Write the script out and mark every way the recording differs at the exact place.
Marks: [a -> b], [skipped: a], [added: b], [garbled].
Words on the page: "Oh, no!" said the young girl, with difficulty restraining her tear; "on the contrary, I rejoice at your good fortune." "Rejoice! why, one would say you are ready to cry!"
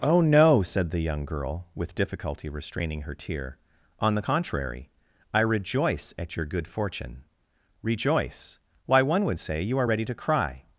"Oh, no!" said the young girl, with difficulty restraining her tear; "on the contrary, I rejoice at your good fortune." "Rejoice! why, one would say you are ready to cry!"